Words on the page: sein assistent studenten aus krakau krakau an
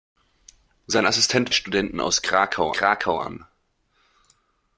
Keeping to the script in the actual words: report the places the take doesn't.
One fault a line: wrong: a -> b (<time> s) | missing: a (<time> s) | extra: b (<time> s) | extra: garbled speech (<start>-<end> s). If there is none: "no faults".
no faults